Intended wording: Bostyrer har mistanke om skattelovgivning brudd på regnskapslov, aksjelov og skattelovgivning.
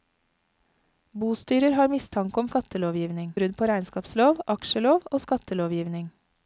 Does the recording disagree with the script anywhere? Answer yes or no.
no